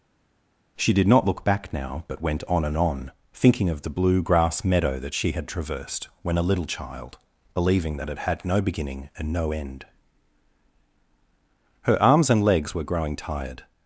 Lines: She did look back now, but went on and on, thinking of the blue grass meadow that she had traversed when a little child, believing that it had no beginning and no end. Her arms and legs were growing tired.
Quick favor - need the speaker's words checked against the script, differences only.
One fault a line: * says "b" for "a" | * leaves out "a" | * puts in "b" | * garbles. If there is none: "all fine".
* puts in "not"